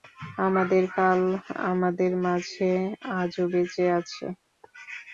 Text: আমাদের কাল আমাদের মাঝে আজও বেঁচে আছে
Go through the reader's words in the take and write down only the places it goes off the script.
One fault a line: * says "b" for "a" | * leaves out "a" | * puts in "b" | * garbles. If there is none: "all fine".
all fine